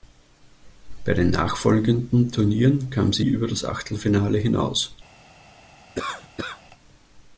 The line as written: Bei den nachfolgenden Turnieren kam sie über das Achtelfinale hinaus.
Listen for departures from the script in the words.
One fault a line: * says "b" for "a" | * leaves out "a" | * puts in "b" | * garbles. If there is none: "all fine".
all fine